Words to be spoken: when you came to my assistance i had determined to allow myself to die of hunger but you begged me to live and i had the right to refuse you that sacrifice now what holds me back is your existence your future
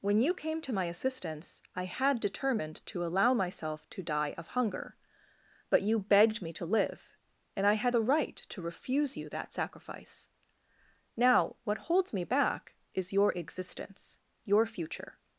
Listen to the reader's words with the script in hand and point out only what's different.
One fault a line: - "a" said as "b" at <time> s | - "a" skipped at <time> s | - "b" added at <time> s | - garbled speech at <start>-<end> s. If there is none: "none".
none